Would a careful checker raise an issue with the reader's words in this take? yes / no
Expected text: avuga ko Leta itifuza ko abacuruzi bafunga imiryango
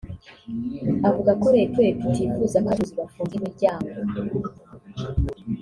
yes